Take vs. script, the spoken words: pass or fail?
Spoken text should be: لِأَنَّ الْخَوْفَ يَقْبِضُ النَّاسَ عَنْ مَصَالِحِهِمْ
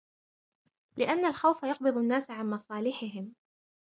pass